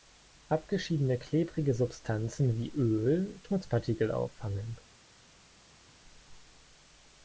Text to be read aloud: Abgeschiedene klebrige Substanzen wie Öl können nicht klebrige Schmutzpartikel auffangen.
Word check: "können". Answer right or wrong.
wrong